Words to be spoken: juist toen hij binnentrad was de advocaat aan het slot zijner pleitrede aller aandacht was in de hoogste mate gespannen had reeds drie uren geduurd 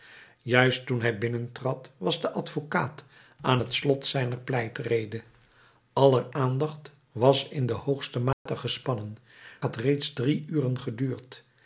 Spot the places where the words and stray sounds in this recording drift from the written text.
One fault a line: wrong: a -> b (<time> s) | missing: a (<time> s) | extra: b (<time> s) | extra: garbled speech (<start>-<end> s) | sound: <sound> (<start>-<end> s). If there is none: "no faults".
sound: dropout (8.3-8.5 s)